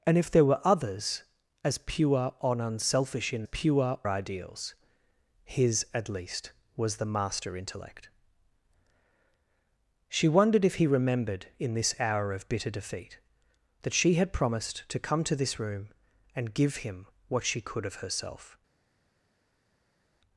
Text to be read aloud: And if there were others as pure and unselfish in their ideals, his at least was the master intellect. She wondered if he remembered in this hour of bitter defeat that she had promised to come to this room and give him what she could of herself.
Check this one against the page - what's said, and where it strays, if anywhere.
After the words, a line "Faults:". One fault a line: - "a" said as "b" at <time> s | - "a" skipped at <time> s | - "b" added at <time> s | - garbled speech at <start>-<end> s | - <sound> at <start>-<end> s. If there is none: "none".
And if there were others as pure and unselfish in pure ideals, his at least was the master intellect. She wondered if he remembered in this hour of bitter defeat that she had promised to come to this room and give him what she could of herself.
Faults:
- "their" said as "pure" at 3.4 s